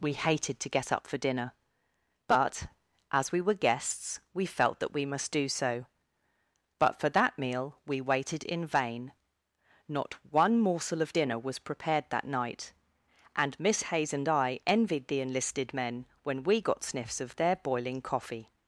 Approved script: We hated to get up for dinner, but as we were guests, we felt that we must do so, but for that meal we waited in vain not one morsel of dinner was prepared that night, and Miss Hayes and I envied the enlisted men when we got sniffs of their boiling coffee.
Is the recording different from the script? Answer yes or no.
no